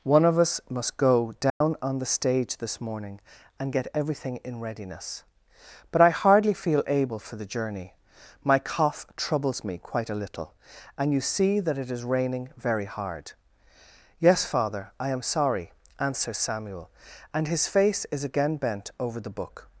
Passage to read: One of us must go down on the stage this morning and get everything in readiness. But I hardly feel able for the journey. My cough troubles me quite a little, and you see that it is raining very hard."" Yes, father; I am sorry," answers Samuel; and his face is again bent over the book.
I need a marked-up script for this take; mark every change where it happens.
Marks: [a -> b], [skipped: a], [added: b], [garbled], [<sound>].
One of us must go down [dropout] on the stage this morning and get everything in readiness. But I hardly feel able for the journey. My cough troubles me quite a little, and you see that it is raining very hard."" Yes, father; I am sorry," answers Samuel; and his face is again bent over the book.